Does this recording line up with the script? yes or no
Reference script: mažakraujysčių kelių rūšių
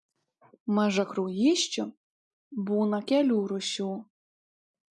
no